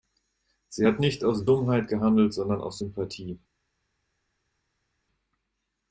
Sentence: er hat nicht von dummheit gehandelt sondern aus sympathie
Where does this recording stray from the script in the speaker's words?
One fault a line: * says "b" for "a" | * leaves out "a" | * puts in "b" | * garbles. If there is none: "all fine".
* says "sie" for "er"
* says "aus" for "von"